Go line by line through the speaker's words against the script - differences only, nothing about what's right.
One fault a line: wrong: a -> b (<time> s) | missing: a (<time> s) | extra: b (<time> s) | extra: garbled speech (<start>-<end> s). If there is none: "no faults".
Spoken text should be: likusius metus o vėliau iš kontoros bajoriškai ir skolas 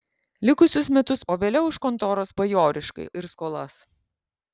no faults